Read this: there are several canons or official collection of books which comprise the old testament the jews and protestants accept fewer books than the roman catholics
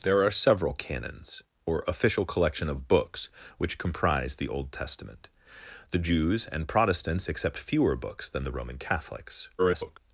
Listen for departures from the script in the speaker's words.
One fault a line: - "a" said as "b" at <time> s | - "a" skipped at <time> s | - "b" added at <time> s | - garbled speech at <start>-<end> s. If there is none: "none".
- garbled speech at 9.6-10.0 s